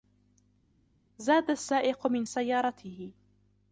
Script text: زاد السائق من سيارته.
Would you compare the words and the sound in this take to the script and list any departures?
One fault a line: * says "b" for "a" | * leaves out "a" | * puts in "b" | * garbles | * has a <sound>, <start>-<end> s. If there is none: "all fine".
all fine